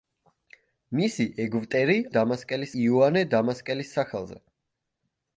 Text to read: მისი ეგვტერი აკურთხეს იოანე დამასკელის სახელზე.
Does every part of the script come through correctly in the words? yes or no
no